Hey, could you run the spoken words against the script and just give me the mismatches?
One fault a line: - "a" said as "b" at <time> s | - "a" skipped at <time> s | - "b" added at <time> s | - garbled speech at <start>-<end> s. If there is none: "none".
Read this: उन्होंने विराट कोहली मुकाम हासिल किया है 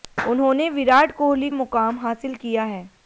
none